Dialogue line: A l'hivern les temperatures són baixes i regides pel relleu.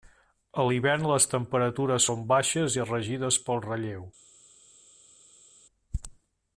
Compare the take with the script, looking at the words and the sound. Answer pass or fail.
pass